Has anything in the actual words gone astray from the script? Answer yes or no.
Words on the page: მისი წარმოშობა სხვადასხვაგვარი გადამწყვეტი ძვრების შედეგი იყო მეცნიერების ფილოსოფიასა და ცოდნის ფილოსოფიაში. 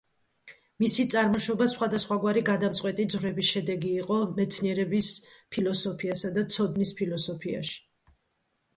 no